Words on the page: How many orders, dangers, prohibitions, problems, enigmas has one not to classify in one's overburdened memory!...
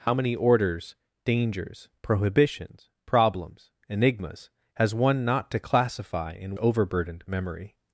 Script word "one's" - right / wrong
wrong